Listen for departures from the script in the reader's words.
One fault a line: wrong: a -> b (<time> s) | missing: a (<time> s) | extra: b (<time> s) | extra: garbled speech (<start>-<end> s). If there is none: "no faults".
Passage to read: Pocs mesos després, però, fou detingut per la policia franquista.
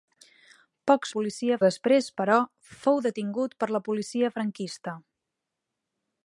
wrong: mesos -> policia (1.2 s)